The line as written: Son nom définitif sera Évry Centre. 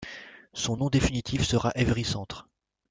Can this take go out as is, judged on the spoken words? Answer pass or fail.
pass